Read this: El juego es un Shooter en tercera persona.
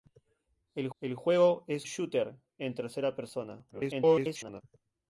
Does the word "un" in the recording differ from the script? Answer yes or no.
yes